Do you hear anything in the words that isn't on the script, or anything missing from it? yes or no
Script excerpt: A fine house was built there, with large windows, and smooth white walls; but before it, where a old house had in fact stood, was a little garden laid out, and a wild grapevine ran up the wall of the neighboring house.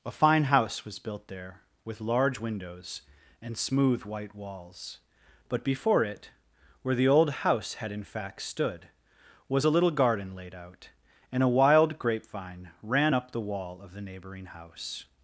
yes